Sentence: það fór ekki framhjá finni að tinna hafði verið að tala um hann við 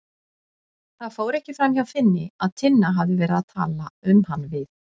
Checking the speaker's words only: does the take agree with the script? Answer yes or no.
yes